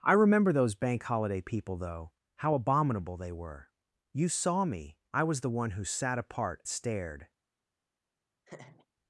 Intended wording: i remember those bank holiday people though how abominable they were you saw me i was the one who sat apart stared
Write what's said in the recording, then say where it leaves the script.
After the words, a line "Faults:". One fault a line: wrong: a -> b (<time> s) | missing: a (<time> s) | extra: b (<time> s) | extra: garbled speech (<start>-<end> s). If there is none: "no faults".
i remember those bank holiday people though how abominable they were you saw me i was the one who sat apart stared
Faults:
no faults